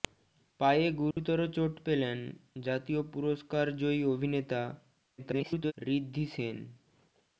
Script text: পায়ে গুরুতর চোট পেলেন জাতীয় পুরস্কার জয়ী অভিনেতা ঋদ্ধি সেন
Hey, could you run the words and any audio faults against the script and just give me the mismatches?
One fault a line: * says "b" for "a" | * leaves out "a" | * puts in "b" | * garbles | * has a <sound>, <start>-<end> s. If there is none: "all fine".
* has a dropout, 1.1-1.2 s
* garbles